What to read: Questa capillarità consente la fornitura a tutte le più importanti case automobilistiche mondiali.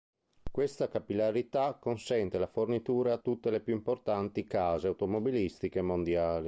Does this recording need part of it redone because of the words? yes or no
no